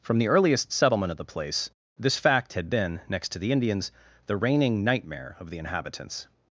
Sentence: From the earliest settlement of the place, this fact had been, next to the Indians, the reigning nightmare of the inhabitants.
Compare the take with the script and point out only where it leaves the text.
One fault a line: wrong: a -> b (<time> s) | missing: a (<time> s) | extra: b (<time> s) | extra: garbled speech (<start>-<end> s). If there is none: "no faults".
no faults